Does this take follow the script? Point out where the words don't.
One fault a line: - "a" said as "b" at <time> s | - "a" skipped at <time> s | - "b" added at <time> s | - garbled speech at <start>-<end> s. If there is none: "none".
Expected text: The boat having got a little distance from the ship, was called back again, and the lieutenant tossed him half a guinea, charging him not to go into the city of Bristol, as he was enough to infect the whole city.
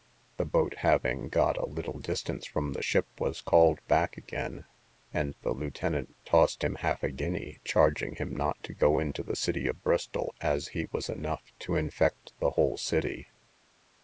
none